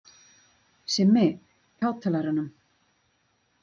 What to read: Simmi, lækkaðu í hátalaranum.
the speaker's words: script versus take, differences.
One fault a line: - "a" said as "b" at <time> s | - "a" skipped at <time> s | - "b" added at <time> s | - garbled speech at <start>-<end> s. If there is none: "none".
- "lækkaðu" skipped at 1.2 s